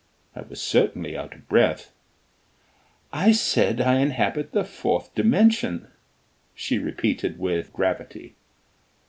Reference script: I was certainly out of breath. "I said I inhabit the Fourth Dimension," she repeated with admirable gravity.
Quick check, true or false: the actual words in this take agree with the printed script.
false